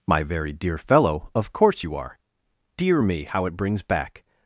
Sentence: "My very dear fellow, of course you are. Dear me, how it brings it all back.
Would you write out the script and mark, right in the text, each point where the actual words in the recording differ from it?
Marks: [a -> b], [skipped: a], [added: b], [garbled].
"My very dear fellow, of course you are. Dear me, how it brings [skipped: it all] back.